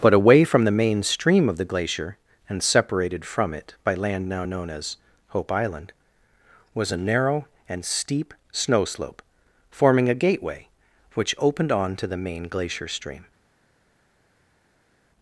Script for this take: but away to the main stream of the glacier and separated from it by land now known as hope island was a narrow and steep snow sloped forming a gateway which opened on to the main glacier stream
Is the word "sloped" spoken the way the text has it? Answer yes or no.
no